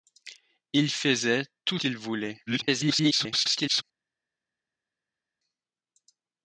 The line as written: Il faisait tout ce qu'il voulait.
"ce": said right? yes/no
no